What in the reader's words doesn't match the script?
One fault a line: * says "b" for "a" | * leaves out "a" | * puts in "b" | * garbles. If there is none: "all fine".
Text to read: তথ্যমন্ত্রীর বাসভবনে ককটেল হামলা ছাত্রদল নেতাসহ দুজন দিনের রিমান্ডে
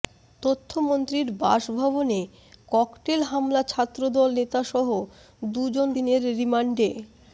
all fine